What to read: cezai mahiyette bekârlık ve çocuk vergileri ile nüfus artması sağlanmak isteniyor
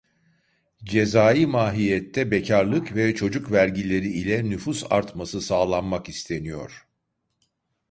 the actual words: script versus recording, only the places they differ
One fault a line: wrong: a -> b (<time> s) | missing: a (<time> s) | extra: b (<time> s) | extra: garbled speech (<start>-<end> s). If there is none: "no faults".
no faults